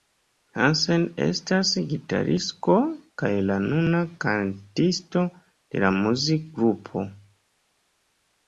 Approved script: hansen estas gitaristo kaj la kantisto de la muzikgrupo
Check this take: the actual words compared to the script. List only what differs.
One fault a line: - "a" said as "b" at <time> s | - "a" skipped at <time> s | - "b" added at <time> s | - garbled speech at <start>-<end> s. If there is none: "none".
- "nuna" added at 3.7 s